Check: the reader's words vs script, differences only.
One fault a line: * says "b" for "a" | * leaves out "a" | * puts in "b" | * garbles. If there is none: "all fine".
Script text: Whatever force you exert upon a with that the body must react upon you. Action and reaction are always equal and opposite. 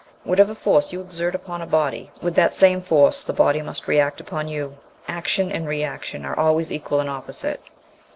* puts in "body"
* puts in "same force"